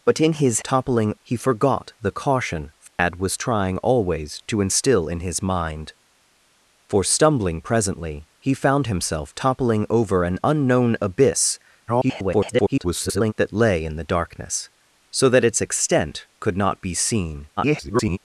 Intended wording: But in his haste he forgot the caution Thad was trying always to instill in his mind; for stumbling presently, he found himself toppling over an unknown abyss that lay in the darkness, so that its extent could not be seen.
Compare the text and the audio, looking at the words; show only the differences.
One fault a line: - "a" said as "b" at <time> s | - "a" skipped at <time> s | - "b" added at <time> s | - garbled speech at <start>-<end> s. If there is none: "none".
- "haste" said as "toppling" at 0.6 s
- garbled speech at 11.9-13.3 s
- garbled speech at 17.6-18.2 s